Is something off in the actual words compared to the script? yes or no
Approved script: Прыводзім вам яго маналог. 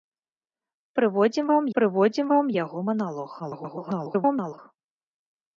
yes